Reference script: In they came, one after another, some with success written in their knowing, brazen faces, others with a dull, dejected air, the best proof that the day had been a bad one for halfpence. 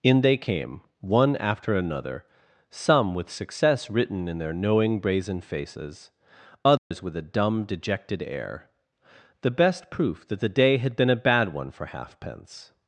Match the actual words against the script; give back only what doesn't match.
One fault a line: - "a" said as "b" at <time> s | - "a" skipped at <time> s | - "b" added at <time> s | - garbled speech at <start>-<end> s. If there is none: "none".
- "dull" said as "dumb" at 7.2 s